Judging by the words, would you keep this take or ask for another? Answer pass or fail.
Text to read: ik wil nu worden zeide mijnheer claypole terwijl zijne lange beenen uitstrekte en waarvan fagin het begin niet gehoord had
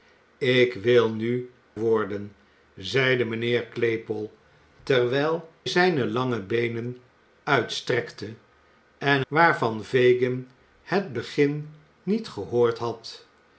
pass